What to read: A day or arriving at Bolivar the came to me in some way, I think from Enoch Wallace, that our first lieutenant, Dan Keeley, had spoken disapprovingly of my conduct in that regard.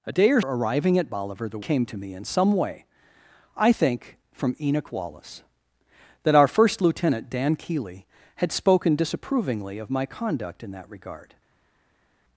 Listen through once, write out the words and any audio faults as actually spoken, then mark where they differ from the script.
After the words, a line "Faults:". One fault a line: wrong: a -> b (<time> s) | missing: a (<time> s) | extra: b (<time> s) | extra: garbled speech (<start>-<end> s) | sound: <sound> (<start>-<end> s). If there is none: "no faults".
A day or arriving at Bolivar the came to me in some way, I think from Enoch Wallace, that our first lieutenant, Dan Keeley, had spoken disapprovingly of my conduct in that regard.
Faults:
no faults